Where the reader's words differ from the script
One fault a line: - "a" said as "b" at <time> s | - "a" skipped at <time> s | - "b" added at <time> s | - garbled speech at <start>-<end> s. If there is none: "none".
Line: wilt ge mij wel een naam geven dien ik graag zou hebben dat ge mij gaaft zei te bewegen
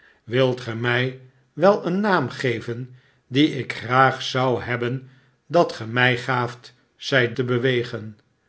none